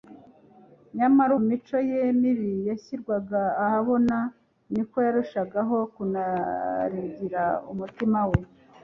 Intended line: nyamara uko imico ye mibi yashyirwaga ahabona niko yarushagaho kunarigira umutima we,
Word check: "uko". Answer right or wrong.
wrong